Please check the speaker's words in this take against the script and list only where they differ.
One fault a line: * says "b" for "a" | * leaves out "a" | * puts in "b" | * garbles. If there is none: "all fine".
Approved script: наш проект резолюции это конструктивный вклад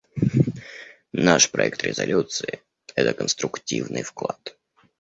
all fine